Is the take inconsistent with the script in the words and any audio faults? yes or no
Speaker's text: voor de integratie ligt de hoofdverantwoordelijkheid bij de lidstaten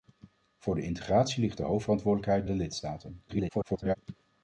yes